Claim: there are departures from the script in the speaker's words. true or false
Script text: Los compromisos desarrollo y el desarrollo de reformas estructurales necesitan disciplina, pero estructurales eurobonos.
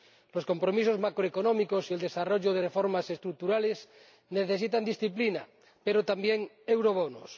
true